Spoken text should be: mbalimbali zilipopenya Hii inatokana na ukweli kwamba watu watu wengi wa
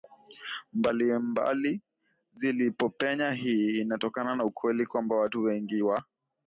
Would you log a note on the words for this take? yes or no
yes